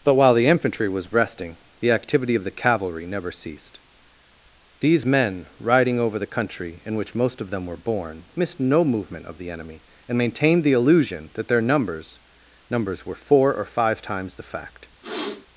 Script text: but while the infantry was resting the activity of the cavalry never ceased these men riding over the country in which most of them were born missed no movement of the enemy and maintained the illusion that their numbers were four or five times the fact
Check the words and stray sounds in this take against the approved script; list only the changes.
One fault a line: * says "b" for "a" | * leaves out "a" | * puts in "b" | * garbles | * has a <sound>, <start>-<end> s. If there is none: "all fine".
* puts in "numbers"
* has a sniff, 15.0-15.5 s